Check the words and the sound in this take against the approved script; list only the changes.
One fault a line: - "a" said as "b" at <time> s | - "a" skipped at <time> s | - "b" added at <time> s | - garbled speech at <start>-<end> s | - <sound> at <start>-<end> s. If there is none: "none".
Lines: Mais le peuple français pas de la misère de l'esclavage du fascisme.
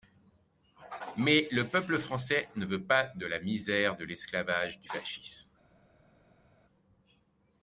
- "ne veut" added at 2.5 s